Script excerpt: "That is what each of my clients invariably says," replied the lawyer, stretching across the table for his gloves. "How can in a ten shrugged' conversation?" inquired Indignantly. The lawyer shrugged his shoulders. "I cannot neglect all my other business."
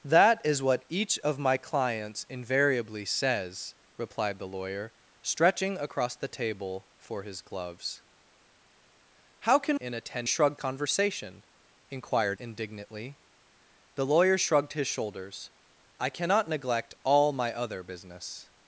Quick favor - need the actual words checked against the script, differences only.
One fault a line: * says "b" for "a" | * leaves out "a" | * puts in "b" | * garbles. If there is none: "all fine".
all fine